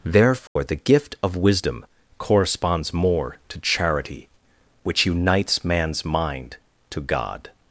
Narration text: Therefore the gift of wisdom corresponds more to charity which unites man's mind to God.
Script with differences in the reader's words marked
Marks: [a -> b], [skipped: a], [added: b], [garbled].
Therefore the gift of wisdom corresponds more to charity which unites man's mind to God.